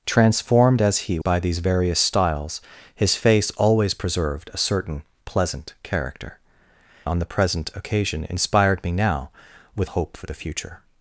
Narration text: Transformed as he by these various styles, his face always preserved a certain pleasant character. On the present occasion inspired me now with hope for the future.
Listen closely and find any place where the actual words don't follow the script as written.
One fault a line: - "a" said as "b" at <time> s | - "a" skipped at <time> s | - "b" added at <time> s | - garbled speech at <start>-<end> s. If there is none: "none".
none